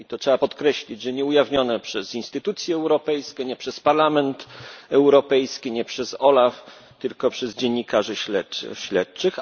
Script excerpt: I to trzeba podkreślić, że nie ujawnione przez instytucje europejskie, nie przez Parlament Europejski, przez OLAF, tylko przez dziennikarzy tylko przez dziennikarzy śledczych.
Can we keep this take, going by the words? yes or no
no